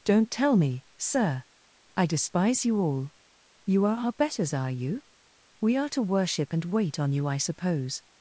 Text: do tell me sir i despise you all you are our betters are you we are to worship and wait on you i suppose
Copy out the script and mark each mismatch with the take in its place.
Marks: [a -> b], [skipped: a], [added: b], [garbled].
[do -> don't] tell me sir i despise you all you are our betters are you we are to worship and wait on you i suppose